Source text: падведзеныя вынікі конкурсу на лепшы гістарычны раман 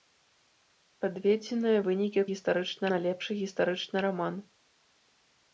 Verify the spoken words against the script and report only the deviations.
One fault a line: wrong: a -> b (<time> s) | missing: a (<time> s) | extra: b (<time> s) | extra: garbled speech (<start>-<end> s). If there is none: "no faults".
wrong: конкурсу -> гістарычны (2.3 s)